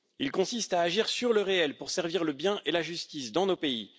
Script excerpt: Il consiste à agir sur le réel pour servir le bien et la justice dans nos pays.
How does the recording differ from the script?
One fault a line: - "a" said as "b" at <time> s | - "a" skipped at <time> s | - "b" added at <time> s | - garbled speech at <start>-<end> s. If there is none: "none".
none